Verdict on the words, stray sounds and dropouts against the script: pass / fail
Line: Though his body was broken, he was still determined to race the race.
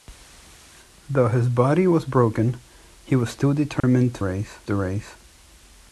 fail